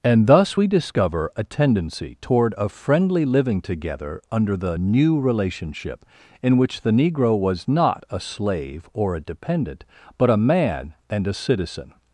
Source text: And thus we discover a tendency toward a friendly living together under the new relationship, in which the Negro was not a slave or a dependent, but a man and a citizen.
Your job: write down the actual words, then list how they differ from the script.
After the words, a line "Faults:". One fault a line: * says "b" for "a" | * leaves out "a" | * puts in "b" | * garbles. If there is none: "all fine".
And thus we discover a tendency toward a friendly living together under the new relationship, in which the Negro was not a slave or a dependent, but a man and a citizen.
Faults:
all fine